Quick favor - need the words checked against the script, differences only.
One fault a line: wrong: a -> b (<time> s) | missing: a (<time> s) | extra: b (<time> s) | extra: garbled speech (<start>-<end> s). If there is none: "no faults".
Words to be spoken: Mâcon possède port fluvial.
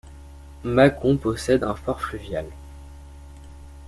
extra: un (1.6 s)